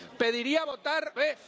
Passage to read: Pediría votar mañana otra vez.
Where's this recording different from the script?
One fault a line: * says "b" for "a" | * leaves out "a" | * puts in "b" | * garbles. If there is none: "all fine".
* leaves out "mañana otra"